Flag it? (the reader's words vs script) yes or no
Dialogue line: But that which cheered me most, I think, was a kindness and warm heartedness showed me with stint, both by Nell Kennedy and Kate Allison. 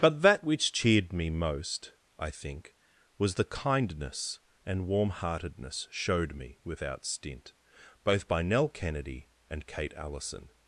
yes